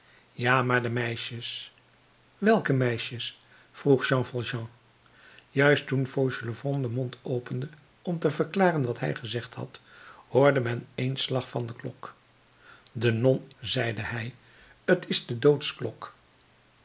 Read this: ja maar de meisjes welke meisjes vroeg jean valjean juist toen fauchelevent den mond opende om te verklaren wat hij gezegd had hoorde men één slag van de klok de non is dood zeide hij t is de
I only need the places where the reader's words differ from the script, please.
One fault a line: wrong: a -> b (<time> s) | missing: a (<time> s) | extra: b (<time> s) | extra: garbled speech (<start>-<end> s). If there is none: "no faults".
missing: is dood (13.5 s)